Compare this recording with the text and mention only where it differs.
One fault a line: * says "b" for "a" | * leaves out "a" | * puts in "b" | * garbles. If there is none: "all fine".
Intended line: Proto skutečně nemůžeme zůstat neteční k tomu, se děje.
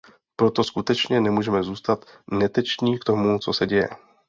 * puts in "co"